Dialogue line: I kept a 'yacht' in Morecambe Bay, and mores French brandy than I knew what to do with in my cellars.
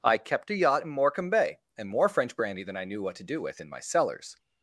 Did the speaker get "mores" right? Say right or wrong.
wrong